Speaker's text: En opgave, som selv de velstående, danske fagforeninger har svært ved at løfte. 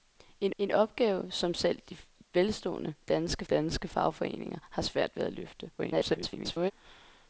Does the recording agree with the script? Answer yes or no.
no